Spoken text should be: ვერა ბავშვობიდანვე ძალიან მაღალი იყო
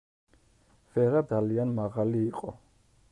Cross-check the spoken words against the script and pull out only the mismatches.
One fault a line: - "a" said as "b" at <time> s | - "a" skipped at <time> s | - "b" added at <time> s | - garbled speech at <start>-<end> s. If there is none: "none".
- "ბავშვობიდანვე" skipped at 1.2 s